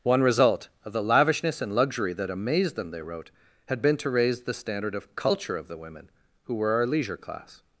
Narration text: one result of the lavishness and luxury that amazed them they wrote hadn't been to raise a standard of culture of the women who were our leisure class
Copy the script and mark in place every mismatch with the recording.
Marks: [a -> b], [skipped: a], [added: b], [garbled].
one result of the lavishness and luxury that amazed them they wrote [hadn't -> had] been to raise [a -> the] standard of culture of the women who were our leisure class